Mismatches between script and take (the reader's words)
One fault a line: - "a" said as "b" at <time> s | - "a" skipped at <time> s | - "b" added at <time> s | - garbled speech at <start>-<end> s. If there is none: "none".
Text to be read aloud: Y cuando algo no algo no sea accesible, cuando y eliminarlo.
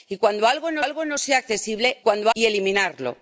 none